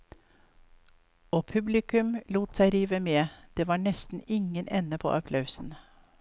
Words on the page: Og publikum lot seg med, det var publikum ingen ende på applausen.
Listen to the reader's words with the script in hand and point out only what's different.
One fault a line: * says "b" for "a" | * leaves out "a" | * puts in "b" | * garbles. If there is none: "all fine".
* puts in "rive"
* says "nesten" for "publikum"